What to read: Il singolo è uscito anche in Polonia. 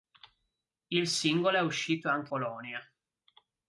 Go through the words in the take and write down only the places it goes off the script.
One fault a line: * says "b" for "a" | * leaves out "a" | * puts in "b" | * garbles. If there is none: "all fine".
* leaves out "in"